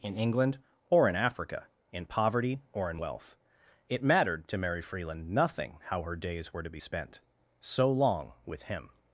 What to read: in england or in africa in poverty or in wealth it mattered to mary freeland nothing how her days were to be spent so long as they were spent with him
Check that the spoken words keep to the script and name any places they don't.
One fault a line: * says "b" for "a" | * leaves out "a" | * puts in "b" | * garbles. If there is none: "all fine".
* leaves out "as they were spent"